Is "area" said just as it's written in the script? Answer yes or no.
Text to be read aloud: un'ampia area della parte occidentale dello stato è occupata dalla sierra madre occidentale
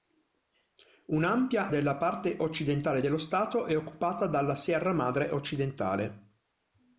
no